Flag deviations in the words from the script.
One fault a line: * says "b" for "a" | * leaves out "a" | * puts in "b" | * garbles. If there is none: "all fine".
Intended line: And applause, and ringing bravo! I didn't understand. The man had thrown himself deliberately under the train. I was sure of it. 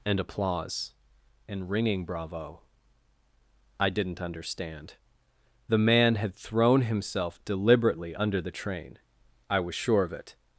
all fine